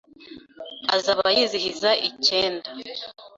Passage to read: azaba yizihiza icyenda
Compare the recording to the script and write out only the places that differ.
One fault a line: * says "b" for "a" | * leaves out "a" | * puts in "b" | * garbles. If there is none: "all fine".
all fine